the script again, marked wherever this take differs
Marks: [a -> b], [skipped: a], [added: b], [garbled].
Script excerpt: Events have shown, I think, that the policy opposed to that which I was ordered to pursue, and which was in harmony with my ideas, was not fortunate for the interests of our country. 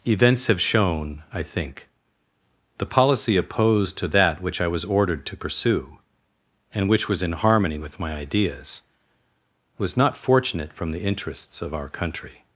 Events have shown, I think, [skipped: that] the policy opposed to that which I was ordered to pursue, and which was in harmony with my ideas, was not fortunate [for -> from] the interests of our country.